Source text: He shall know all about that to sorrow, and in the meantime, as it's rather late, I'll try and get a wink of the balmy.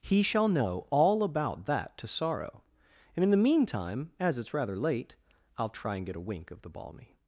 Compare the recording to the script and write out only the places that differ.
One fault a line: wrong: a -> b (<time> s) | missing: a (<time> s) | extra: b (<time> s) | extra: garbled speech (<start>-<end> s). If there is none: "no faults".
no faults